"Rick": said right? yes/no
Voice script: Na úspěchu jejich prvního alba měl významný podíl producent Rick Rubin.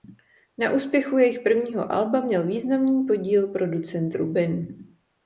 no